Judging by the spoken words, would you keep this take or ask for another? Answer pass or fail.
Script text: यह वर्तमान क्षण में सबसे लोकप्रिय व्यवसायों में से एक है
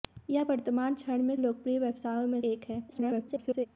fail